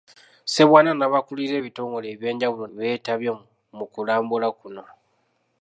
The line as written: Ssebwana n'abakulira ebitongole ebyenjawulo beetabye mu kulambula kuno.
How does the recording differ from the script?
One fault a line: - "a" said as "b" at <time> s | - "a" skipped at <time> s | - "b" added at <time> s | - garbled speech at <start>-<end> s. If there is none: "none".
none